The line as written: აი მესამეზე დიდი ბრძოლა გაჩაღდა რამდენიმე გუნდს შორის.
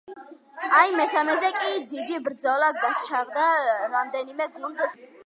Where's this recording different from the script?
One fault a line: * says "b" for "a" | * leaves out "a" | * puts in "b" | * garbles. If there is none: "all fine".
* puts in "კი"